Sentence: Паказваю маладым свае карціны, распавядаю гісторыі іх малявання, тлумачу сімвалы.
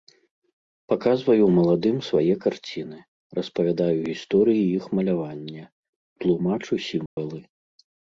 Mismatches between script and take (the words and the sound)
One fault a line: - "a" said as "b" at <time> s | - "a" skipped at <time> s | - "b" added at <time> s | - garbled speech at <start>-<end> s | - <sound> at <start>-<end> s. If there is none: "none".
- dropout at 7.1-7.2 s